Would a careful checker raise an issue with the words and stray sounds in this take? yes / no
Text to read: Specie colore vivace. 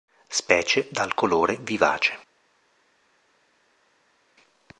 yes